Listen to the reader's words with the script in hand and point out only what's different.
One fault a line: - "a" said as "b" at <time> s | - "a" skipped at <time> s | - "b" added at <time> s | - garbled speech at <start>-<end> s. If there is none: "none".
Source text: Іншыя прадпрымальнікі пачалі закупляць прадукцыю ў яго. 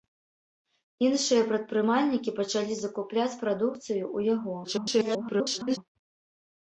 - garbled speech at 4.6-5.8 s